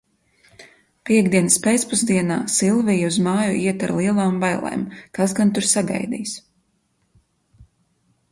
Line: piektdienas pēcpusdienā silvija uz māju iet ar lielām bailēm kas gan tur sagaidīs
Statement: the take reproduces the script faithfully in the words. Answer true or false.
true